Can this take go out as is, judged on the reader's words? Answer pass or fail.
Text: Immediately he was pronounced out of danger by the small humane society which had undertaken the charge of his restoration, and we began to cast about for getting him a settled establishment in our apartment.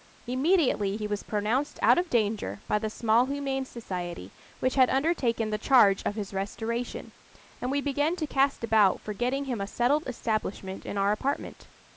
pass